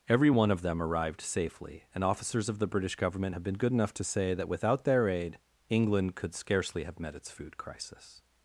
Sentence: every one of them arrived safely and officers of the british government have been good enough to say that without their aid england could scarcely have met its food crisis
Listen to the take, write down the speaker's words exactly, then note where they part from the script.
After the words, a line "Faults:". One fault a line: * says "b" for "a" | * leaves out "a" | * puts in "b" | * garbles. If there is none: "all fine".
every one of them arrived safely and officers of the british government have been good enough to say that without their aid england could scarcely have met its food crisis
Faults:
all fine